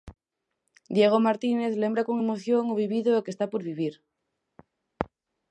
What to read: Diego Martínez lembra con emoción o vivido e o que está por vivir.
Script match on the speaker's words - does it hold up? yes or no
yes